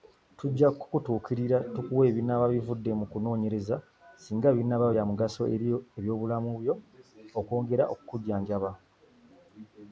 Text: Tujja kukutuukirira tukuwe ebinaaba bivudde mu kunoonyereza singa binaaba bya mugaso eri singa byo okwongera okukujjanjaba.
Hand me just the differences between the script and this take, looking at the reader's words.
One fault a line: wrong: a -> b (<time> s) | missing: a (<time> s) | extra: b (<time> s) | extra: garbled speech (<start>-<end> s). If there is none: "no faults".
wrong: singa -> ebyobulamu (6.0 s)